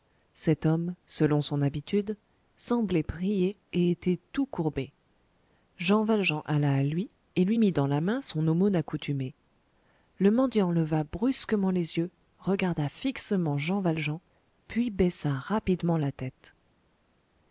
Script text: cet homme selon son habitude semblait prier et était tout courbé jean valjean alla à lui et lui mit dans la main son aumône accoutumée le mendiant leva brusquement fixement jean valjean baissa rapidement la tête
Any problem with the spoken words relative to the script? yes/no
yes